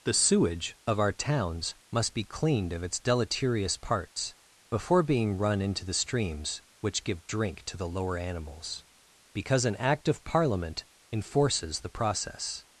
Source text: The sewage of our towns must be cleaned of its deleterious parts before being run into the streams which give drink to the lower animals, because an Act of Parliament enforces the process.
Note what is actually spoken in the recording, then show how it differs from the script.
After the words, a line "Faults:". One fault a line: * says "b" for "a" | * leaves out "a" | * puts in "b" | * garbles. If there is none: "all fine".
The sewage of our towns must be cleaned of its deleterious parts before being run into the streams which give drink to the lower animals, because an Act of Parliament enforces the process.
Faults:
all fine